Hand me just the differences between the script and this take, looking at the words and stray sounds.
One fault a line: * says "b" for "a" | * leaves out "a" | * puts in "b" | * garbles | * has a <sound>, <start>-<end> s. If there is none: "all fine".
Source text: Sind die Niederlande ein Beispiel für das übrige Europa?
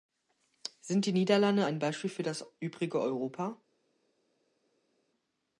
all fine